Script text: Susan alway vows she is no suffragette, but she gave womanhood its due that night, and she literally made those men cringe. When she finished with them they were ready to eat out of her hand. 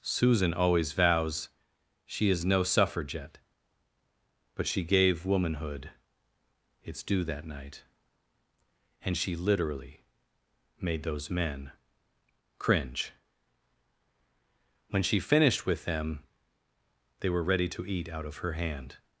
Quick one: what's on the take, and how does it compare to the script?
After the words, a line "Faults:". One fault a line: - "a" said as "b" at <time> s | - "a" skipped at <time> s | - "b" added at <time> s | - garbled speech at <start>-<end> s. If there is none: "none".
Susan always vows she is no suffragette, but she gave womanhood its due that night, and she literally made those men cringe. When she finished with them they were ready to eat out of her hand.
Faults:
- "alway" said as "always" at 0.5 s